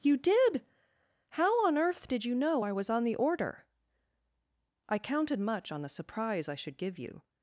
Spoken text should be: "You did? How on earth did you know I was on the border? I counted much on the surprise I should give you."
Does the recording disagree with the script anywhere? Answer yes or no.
yes